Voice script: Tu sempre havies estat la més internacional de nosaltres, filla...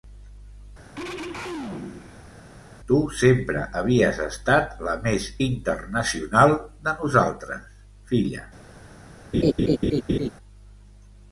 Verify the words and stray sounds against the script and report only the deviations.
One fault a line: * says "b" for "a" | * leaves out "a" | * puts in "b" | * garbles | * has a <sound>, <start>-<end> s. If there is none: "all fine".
* has a throat clearing, 0.9-2.3 s
* has a laugh, 9.3-10.3 s